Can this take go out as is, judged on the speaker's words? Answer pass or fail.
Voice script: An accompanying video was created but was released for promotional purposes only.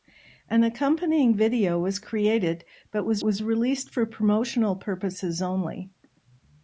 fail